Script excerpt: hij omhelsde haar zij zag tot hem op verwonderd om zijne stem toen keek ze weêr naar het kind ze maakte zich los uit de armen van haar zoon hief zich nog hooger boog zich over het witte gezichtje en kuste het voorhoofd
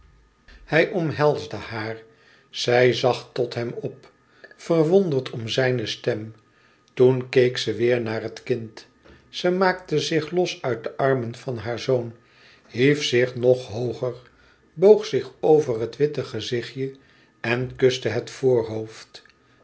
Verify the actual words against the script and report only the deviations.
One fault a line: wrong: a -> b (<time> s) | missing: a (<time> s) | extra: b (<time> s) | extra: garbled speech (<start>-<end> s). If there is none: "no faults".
no faults